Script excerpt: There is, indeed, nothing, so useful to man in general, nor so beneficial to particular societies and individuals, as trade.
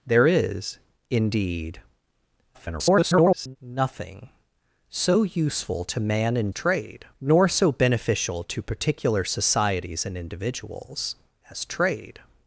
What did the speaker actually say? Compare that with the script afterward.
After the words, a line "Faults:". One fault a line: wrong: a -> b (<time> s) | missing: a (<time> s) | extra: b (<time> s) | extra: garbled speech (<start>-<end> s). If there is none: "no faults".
There is, indeed, [garbled] nothing, so useful to man in trade, nor so beneficial to particular societies and individuals, as trade.
Faults:
extra: garbled speech (2.5-3.6 s)
wrong: general -> trade (6.5 s)